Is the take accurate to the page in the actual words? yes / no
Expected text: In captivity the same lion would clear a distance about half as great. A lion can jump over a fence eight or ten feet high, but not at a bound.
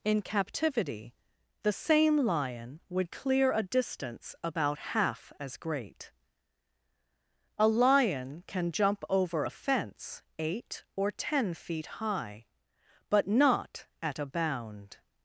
yes